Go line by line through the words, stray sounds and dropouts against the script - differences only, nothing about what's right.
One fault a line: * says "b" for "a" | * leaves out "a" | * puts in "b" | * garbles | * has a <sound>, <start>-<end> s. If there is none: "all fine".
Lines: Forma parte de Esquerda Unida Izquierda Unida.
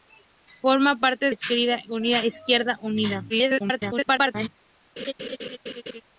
* leaves out "de"
* garbles
* has a laugh, 5.0-6.0 s